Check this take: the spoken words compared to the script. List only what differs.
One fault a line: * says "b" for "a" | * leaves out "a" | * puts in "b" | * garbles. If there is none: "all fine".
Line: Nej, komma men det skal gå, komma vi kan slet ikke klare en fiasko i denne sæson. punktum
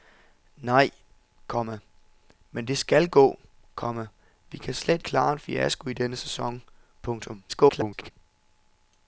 * leaves out "ikke"
* garbles